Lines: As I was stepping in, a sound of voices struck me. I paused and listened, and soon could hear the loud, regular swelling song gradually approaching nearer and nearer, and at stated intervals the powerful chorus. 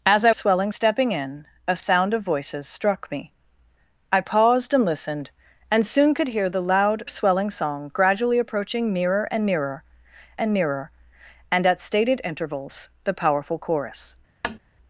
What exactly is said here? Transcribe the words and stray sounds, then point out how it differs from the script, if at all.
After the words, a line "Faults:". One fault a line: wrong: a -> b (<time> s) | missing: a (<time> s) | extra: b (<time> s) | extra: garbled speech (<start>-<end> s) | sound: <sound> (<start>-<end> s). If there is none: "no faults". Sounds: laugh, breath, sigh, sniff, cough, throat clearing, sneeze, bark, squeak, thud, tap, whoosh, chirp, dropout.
As I swelling stepping in, a sound of voices struck me. I paused and listened, and soon could hear the loud, swelling song gradually approaching nearer and nearer and nearer, and at stated intervals the powerful chorus.
Faults:
wrong: was -> swelling (0.3 s)
missing: regular (7.0 s)
extra: nearer and (10.5 s)
sound: tap (14.4-14.6 s)